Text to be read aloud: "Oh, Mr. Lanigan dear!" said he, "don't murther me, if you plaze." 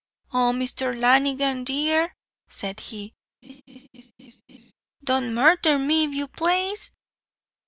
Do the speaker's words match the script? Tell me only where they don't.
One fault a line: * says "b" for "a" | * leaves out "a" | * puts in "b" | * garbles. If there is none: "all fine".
all fine